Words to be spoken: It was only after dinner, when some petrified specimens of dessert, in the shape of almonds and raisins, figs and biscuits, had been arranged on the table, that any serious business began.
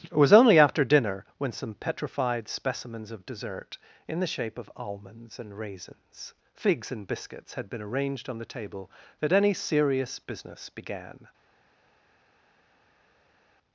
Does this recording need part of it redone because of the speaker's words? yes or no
no